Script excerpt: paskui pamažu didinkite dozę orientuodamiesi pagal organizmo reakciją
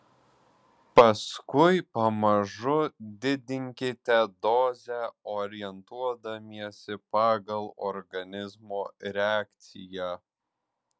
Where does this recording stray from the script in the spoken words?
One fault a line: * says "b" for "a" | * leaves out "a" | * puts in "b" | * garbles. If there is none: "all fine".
all fine